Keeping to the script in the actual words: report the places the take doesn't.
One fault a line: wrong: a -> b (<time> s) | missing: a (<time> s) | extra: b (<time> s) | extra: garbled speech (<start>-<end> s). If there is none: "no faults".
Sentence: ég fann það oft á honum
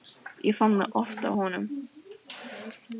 no faults